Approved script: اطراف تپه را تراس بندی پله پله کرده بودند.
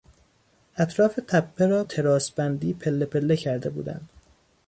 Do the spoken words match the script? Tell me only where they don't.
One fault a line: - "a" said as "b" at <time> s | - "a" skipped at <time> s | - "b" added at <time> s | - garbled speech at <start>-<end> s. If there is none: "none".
none